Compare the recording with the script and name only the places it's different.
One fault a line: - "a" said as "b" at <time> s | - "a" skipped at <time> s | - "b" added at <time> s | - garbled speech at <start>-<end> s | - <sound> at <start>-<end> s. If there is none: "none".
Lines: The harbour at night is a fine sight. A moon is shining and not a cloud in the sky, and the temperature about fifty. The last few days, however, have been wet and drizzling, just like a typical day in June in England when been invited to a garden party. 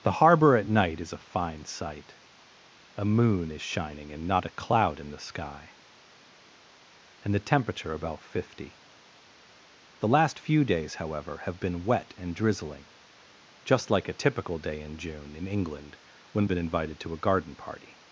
none